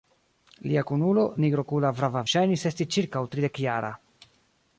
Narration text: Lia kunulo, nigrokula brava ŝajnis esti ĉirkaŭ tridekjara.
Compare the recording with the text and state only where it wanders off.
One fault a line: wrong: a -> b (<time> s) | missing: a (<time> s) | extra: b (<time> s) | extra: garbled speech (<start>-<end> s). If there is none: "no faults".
no faults